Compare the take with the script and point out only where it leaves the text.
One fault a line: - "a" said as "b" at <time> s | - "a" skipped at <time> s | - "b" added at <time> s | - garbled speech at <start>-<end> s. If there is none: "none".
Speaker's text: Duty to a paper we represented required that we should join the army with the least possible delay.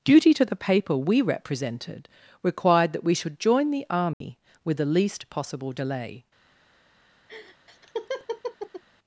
- "a" said as "the" at 0.5 s